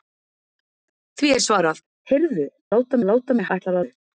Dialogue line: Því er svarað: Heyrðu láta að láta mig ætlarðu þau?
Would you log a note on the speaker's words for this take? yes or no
no